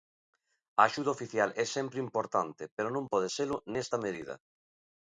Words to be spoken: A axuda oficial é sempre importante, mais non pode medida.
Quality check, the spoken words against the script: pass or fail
fail